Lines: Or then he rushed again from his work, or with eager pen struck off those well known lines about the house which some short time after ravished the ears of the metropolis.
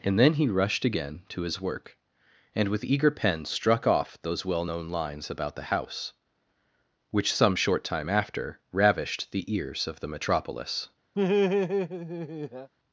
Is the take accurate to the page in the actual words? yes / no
no